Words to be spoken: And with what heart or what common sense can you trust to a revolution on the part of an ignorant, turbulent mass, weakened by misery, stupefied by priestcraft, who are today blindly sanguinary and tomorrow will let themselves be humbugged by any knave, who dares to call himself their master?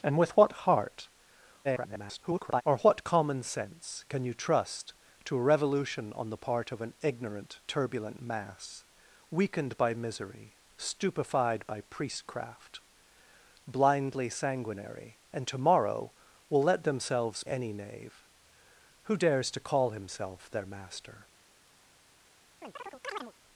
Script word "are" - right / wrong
wrong